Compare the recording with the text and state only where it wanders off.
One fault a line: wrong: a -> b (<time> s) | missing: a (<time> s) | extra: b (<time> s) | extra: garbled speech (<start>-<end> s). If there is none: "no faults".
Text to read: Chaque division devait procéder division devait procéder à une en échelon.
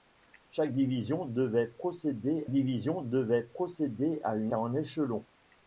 no faults